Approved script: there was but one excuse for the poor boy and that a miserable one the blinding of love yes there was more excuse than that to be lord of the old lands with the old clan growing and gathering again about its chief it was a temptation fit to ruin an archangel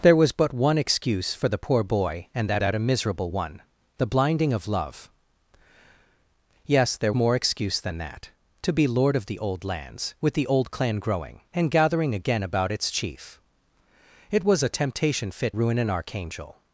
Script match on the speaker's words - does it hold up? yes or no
no